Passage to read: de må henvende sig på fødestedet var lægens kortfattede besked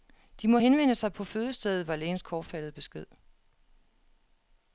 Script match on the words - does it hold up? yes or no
yes